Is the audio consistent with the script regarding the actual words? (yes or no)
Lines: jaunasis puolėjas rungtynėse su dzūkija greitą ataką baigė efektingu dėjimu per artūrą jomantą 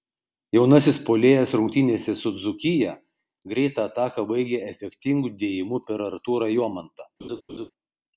yes